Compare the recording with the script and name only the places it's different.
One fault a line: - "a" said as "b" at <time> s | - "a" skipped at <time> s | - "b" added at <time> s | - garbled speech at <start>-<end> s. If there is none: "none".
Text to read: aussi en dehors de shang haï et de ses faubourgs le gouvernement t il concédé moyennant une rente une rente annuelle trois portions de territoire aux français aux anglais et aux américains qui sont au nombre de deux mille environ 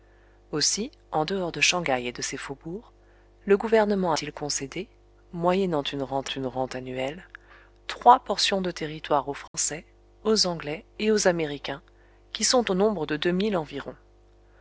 none